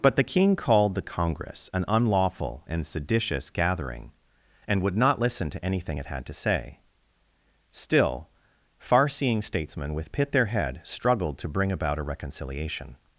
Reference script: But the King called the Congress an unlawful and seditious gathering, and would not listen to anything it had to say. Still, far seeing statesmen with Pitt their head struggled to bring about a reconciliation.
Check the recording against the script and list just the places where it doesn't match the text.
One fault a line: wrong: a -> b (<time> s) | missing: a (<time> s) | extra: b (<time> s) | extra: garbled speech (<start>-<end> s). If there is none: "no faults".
no faults